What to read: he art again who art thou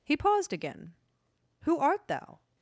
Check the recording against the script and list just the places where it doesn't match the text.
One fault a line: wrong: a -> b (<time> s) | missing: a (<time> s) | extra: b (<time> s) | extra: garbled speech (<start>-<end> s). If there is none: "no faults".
wrong: art -> paused (0.1 s)